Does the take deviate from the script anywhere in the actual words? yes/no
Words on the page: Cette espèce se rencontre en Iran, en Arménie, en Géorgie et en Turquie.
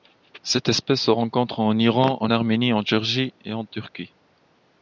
no